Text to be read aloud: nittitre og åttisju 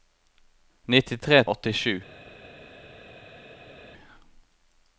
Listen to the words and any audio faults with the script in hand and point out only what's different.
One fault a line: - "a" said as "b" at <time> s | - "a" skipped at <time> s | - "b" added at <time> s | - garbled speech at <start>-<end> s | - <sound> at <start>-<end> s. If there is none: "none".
none